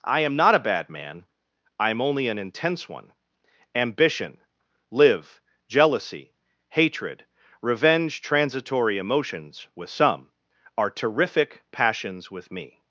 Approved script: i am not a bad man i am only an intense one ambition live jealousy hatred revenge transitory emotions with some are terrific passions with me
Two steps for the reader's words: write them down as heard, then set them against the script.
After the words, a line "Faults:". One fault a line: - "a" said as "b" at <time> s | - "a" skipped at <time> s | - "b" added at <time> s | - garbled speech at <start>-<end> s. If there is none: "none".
i am not a bad man i am only an intense one ambition live jealousy hatred revenge transitory emotions with some are terrific passions with me
Faults:
none